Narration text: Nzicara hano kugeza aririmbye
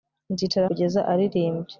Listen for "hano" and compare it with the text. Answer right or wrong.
wrong